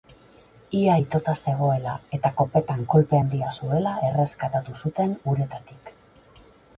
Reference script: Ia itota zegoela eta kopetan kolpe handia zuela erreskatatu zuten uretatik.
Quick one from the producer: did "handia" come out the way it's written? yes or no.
yes